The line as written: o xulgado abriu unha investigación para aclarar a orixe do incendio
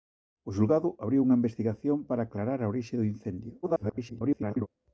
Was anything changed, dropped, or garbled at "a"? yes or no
no